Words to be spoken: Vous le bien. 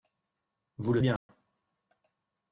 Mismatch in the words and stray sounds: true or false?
true